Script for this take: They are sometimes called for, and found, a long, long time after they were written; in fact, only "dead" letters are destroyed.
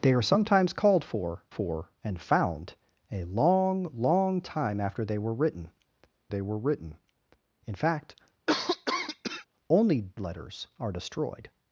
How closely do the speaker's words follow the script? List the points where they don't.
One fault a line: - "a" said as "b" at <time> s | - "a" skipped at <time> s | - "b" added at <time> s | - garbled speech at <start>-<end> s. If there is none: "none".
- "for" added at 1.5 s
- "they were written" added at 6.3 s
- "dead" skipped at 10.1 s